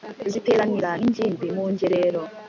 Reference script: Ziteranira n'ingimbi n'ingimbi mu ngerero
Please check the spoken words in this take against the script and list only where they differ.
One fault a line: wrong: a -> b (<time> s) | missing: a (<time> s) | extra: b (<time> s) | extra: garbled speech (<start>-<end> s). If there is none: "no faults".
missing: n'ingimbi (1.5 s)